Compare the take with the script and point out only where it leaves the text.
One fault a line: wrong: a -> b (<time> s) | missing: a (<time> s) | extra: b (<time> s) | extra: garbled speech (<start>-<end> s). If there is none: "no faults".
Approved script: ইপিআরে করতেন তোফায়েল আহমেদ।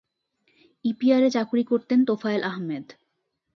extra: চাকুরি (1.3 s)